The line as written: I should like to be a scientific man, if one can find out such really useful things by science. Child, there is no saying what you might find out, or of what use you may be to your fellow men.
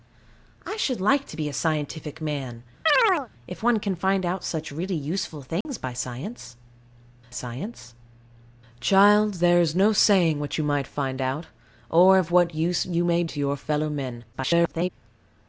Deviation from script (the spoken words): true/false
true